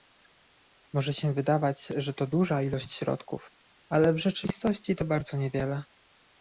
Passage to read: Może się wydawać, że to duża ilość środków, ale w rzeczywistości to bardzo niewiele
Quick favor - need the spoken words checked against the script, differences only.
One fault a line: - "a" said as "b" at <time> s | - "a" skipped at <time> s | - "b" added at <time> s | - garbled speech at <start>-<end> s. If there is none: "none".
none